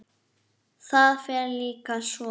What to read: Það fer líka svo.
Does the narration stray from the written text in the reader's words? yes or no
no